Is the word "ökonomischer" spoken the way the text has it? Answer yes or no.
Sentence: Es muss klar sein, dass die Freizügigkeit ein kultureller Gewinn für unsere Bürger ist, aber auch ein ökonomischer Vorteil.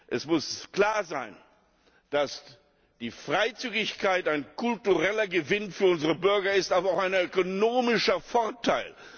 yes